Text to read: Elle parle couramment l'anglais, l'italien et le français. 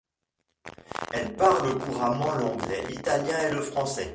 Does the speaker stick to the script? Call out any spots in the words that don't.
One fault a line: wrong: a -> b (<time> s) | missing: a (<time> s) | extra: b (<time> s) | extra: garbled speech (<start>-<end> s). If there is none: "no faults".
no faults